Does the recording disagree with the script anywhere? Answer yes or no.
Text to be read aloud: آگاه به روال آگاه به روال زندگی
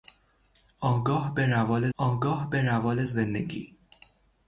no